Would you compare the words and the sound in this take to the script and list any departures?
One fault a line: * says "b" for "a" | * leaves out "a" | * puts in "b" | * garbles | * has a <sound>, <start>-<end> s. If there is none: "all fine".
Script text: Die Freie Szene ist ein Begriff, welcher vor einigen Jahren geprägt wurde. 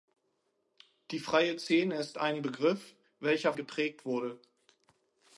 * leaves out "vor einigen Jahren"